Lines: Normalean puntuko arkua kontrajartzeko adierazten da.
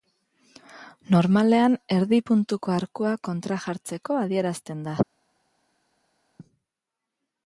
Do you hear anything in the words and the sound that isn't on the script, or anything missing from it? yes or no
yes